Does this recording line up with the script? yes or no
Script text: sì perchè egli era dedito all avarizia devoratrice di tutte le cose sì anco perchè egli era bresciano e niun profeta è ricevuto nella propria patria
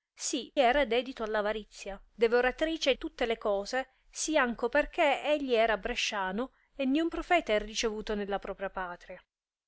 no